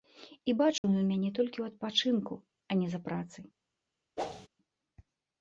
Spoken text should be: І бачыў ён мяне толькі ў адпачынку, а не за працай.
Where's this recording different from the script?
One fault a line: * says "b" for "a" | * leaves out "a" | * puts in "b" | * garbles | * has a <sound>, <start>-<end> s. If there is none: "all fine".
* has a dropout, 0.8-0.8 s
* has a whoosh, 4.2-4.5 s